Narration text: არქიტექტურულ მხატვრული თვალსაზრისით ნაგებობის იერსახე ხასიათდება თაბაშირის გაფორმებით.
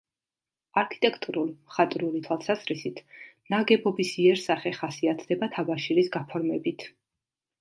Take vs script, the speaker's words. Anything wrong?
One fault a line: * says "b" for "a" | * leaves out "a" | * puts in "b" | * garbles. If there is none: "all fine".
all fine